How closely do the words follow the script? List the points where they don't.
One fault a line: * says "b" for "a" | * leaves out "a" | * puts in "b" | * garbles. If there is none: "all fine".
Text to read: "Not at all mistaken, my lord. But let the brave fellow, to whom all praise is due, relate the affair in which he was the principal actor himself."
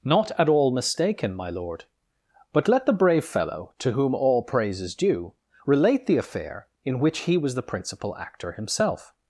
all fine